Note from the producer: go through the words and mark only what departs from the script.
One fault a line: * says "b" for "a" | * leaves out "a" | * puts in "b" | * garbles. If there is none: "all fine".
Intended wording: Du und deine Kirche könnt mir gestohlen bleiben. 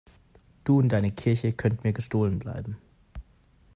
all fine